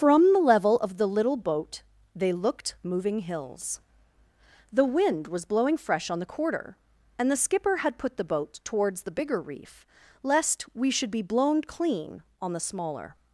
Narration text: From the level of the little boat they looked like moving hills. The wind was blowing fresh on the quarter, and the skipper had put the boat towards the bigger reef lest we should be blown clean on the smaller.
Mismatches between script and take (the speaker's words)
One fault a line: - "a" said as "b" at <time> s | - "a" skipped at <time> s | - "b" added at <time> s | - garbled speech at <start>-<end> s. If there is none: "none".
- "like" skipped at 2.7 s